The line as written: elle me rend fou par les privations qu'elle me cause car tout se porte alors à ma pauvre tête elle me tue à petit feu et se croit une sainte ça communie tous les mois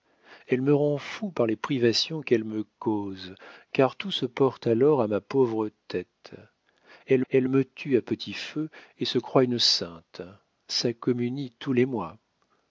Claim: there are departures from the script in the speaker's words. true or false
true